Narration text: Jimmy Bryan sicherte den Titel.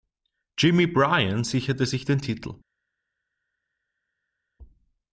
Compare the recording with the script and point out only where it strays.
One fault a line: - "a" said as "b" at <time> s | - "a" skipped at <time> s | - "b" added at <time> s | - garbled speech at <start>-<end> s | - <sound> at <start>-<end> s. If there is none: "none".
- "sich" added at 1.8 s